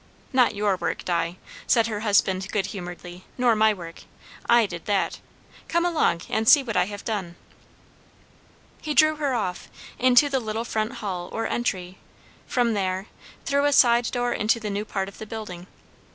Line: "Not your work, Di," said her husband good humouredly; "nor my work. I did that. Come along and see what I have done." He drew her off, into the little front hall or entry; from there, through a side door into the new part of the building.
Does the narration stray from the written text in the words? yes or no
no